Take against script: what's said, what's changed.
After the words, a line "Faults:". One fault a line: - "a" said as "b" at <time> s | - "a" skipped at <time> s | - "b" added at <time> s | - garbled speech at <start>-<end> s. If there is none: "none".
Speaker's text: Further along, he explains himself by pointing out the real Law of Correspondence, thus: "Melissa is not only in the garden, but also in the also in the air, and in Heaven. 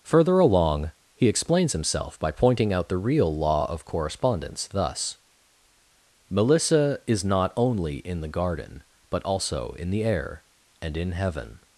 Further along, he explains himself by pointing out the real Law of Correspondence, thus: "Melissa is not only in the garden, but also in the air, and in Heaven.
Faults:
- "also in the" skipped at 10.0 s